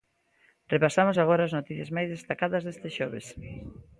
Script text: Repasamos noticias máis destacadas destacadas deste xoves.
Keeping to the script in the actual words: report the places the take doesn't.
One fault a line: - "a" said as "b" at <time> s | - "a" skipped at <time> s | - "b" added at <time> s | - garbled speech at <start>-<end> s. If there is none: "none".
- "agora as" added at 1.2 s
- "destacadas" skipped at 2.6 s